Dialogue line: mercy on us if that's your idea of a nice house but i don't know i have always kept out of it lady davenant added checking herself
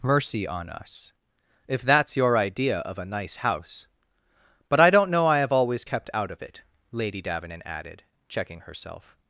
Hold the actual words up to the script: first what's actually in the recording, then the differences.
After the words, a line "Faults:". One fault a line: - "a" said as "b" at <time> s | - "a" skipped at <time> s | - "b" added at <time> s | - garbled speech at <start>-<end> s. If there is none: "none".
mercy on us if that's your idea of a nice house but i don't know i have always kept out of it lady davenant added checking herself
Faults:
none